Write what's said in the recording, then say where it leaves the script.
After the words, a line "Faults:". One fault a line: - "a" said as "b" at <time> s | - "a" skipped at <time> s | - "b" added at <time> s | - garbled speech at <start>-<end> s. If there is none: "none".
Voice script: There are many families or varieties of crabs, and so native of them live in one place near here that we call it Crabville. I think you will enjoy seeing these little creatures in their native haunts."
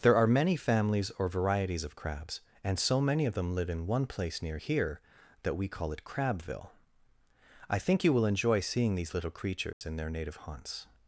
There are many families or varieties of crabs, and so many of them live in one place near here that we call it Crabville. I think you will enjoy seeing these little creatures in their native haunts."
Faults:
- "native" said as "many" at 3.0 s